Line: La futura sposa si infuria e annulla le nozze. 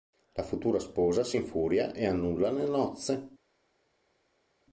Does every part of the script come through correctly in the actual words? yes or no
yes